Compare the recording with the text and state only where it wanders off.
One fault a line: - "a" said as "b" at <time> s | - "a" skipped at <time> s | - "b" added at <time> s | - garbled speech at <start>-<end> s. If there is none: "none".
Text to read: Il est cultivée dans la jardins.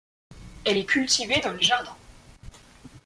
- "Il" said as "Elle" at 0.7 s
- "la" said as "les" at 1.5 s